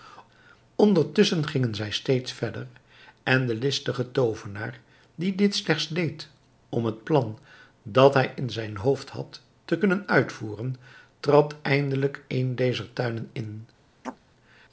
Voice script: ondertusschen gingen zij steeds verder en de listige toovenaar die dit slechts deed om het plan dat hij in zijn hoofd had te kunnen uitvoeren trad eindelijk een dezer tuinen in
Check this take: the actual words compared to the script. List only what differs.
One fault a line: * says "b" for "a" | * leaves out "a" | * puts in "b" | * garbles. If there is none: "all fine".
all fine